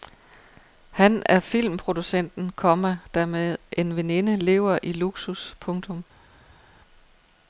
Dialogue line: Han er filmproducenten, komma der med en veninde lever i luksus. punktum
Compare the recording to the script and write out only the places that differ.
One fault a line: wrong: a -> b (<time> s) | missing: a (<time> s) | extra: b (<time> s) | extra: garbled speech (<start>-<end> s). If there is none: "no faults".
no faults